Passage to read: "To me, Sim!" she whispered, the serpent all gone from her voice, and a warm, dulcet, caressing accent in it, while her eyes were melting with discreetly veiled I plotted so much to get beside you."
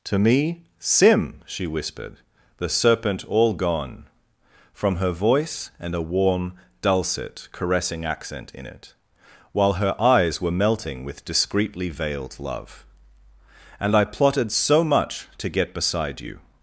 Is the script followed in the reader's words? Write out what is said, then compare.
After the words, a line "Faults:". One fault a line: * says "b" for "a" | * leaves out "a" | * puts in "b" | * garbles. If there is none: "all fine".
"To me, Sim!" she whispered, the serpent all gone from her voice, and a warm, dulcet, caressing accent in it, while her eyes were melting with discreetly veiled love. "And I plotted so much to get beside you."
Faults:
* puts in "love And"